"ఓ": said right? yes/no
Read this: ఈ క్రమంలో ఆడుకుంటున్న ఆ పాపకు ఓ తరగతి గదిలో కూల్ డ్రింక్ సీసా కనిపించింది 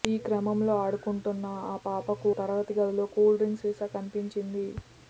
no